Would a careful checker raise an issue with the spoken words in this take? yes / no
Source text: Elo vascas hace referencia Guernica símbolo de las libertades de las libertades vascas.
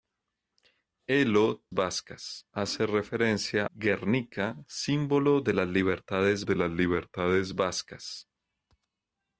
no